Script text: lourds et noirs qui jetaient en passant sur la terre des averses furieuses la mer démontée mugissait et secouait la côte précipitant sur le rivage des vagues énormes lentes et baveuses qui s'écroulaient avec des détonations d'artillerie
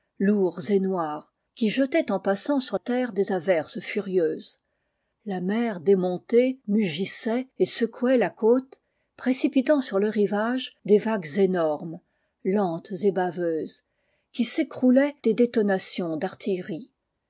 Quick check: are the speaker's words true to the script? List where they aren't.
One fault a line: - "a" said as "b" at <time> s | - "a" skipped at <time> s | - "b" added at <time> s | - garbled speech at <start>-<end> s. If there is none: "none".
- "la" skipped at 2.8 s
- "avec" skipped at 15.1 s